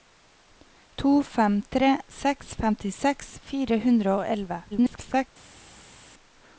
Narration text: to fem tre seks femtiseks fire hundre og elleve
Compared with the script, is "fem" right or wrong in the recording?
right